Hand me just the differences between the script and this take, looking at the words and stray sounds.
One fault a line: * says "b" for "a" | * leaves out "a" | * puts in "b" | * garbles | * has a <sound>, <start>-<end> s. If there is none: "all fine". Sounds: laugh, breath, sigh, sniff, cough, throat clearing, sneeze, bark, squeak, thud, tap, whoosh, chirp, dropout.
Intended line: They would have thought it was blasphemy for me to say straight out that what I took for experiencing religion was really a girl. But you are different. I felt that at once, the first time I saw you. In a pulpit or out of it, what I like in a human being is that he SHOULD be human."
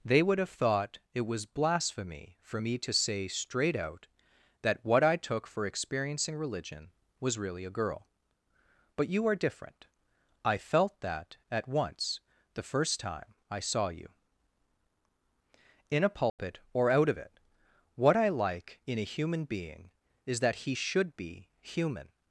* has a dropout, 16.3-16.4 s